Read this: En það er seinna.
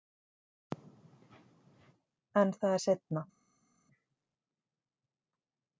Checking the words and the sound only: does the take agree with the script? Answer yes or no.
yes